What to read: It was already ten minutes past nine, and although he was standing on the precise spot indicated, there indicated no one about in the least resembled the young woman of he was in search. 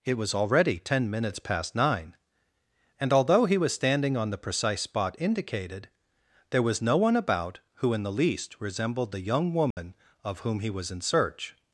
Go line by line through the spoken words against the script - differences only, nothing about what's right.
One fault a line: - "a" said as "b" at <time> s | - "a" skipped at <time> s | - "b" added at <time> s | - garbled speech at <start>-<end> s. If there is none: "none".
- "indicated" said as "was" at 6.6 s
- "who" added at 7.7 s
- "whom" added at 10.4 s